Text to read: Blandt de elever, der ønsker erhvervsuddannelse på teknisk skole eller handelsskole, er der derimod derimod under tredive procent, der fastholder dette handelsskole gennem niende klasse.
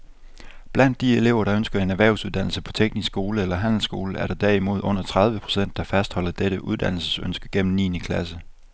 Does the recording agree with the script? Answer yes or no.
no